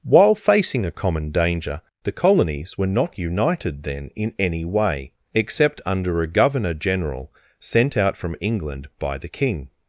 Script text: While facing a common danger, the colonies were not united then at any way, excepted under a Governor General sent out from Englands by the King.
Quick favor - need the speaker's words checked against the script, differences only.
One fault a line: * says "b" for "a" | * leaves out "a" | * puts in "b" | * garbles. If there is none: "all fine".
* says "in" for "at"
* says "except" for "excepted"
* says "England" for "Englands"